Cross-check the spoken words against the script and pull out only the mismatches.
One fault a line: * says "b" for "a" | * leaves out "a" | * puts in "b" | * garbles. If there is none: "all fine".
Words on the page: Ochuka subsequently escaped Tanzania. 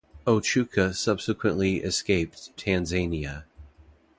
all fine